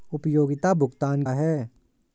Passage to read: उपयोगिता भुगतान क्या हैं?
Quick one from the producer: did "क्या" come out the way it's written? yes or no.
no